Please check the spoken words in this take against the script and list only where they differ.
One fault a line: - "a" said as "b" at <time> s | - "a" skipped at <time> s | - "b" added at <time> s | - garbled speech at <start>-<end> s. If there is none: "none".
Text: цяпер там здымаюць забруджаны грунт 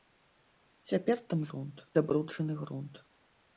- "здымаюць" said as "грунт" at 1.5 s